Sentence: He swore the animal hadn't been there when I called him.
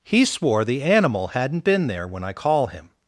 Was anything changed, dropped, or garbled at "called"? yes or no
yes